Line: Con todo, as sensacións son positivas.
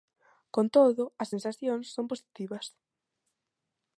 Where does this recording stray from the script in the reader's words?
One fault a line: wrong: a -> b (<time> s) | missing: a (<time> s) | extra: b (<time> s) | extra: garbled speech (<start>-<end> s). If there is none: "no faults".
no faults